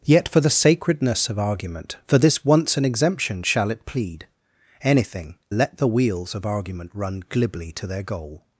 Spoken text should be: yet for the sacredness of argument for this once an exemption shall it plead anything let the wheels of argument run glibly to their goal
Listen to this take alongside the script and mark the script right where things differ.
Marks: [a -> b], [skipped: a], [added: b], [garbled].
yet for the sacredness of argument for this once an exemption shall it plead anything let the wheels of argument run glibly to their goal